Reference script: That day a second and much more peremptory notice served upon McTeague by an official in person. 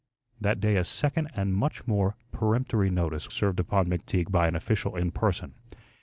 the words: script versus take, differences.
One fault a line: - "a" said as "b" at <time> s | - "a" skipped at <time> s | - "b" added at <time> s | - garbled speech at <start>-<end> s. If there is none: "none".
none